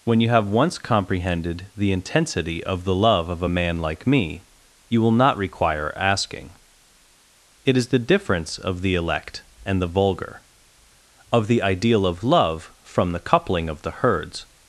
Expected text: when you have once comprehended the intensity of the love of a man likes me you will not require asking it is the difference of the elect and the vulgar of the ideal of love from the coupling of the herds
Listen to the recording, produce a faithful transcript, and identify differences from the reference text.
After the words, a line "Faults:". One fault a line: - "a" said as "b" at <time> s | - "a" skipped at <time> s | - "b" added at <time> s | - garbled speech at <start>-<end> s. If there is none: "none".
when you have once comprehended the intensity of the love of a man like me you will not require asking it is the difference of the elect and the vulgar of the ideal of love from the coupling of the herds
Faults:
- "likes" said as "like" at 3.8 s